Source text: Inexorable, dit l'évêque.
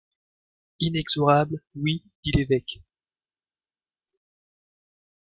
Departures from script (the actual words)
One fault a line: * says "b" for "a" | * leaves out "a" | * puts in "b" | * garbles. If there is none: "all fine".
* puts in "oui"